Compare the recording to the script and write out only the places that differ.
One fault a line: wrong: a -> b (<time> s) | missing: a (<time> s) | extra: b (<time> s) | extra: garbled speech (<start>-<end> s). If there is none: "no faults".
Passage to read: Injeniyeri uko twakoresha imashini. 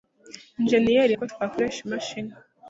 no faults